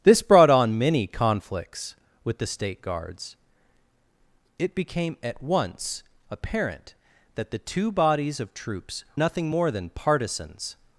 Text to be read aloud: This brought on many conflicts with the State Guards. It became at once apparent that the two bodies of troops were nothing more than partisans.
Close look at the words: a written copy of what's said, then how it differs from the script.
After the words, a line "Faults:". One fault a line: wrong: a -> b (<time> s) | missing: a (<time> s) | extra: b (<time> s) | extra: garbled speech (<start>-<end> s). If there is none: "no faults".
This brought on many conflicts with the State Guards. It became at once apparent that the two bodies of troops nothing more than partisans.
Faults:
missing: were (9.1 s)